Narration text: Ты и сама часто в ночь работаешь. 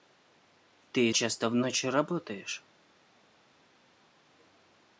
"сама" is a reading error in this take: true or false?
true